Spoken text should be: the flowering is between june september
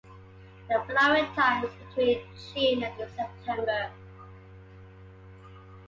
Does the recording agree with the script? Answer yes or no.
no